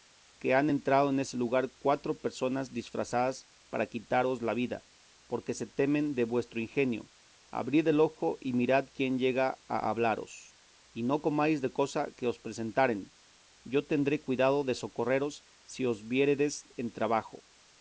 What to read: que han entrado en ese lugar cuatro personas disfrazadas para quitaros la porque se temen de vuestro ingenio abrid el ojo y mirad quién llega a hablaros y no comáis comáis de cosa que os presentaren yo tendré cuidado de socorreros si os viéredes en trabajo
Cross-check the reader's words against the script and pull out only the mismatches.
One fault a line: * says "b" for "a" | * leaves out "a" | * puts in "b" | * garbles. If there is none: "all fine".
* puts in "vida"
* leaves out "comáis"